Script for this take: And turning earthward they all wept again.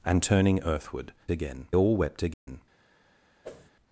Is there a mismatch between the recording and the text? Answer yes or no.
yes